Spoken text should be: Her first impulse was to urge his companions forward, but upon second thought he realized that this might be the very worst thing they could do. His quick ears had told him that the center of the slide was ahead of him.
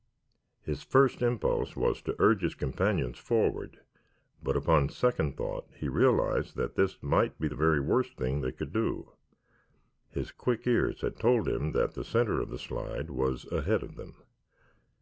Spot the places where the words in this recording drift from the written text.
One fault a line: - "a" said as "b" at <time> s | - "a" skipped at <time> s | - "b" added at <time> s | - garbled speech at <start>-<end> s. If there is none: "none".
- "Her" said as "His" at 0.6 s
- "him" said as "them" at 14.0 s